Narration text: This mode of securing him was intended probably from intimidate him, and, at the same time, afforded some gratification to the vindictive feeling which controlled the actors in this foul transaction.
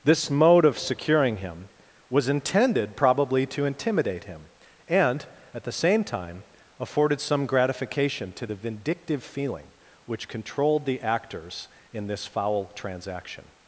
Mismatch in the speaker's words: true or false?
true